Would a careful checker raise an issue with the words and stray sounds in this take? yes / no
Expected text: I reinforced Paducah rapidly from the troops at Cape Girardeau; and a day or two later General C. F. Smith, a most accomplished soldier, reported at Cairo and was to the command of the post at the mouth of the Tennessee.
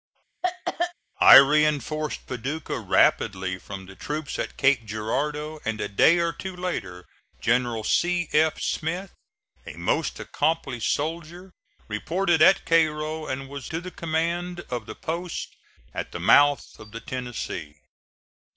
yes